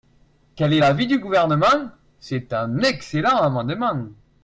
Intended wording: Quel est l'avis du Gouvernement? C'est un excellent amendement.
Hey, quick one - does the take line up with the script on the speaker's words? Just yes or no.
yes